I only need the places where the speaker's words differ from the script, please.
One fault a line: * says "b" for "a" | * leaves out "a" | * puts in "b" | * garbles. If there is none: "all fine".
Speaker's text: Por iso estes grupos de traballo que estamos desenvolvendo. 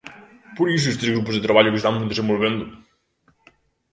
all fine